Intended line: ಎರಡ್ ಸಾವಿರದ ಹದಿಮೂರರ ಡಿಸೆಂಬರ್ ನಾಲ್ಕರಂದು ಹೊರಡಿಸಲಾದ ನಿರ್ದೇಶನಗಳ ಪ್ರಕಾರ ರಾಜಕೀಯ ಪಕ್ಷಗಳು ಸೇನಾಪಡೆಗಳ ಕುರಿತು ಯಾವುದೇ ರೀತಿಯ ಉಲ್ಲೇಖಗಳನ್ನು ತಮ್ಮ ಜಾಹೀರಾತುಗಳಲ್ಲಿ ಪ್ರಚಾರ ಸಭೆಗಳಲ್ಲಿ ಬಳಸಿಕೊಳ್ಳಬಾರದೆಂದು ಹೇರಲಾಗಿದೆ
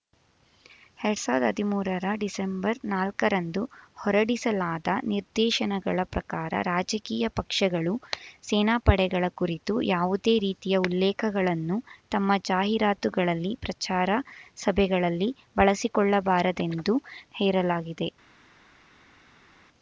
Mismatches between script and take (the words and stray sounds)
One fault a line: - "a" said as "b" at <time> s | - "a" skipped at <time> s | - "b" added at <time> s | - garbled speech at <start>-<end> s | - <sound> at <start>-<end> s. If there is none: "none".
none